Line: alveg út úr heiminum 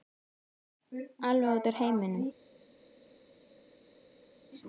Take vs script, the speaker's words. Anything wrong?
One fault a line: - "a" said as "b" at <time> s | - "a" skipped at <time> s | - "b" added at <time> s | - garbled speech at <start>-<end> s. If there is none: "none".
none